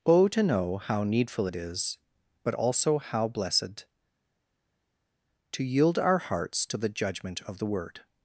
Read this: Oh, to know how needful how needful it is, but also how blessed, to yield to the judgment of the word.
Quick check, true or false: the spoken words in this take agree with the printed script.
false